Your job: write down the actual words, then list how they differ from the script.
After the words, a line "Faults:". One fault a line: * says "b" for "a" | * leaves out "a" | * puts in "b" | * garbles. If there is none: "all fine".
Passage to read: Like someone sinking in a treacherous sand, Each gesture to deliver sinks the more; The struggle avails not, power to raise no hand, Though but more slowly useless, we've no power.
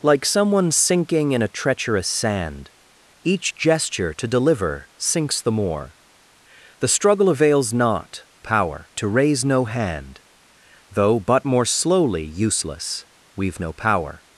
Like someone sinking in a treacherous sand, Each gesture to deliver sinks the more; The struggle avails not, power to raise no hand, Though but more slowly useless, we've no power.
Faults:
all fine